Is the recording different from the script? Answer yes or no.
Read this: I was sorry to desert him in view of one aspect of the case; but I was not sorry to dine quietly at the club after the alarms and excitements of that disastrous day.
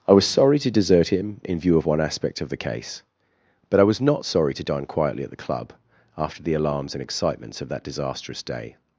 no